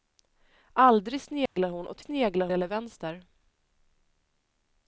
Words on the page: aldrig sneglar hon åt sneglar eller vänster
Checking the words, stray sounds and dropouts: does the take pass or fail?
fail